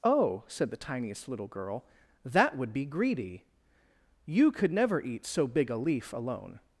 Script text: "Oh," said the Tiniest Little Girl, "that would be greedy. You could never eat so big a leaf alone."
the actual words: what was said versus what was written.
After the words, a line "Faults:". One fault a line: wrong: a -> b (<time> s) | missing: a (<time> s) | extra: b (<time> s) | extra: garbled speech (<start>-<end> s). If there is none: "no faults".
"Oh," said the Tiniest Little Girl, "that would be greedy. You could never eat so big a leaf alone."
Faults:
no faults